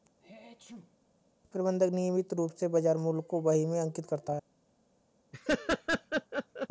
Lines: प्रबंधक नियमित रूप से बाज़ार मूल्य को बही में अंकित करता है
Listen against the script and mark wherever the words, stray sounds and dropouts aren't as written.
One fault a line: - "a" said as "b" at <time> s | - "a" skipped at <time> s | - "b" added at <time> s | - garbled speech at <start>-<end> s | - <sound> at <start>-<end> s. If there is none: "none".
- sneeze at 0.2-1.0 s
- laugh at 5.3-6.7 s